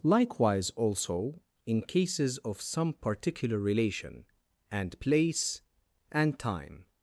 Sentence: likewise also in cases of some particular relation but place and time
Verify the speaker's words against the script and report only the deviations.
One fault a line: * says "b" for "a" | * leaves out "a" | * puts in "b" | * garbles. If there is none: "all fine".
* says "and" for "but"